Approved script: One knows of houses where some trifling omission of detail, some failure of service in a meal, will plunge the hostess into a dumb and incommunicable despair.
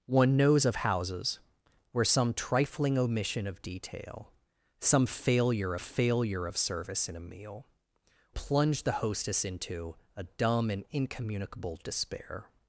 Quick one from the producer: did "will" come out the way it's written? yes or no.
no